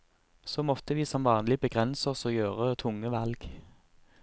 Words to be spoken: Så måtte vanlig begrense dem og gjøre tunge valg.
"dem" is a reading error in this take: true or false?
true